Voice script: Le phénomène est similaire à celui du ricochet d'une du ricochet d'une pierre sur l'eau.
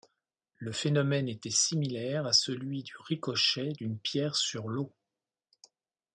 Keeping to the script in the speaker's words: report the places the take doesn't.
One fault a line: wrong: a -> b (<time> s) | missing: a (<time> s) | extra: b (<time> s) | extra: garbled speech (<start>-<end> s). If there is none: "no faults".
wrong: est -> était (1.3 s)
missing: du ricochet d'une (4.0 s)